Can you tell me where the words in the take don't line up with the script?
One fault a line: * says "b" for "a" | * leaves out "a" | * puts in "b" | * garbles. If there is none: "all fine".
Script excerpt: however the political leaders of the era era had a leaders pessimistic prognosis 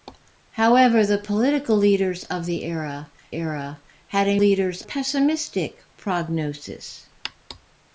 all fine